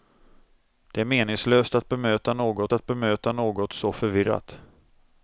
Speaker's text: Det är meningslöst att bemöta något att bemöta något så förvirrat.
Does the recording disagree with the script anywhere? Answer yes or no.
no